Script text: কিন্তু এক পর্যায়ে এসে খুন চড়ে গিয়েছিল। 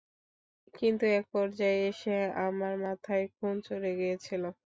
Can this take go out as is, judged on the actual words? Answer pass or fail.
fail